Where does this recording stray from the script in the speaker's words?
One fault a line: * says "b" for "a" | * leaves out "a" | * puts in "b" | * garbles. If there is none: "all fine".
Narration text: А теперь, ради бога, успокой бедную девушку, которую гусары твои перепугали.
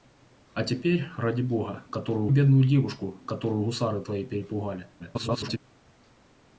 * says "которую" for "успокой"
* garbles